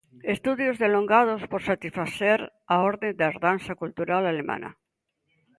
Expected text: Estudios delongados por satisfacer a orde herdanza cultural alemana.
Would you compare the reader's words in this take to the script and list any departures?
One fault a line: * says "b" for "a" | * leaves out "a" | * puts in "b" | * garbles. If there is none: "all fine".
* puts in "da"